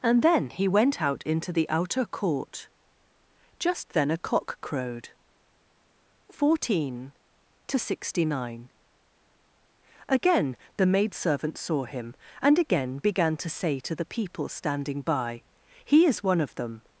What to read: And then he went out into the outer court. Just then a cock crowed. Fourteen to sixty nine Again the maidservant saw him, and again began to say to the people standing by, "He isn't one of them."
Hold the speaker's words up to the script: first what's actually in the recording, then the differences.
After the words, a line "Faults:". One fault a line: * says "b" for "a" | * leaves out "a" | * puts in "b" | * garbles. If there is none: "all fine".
And then he went out into the outer court. Just then a cock crowed. Fourteen to sixty nine Again the maidservant saw him, and again began to say to the people standing by, "He is one of them."
Faults:
* says "is" for "isn't"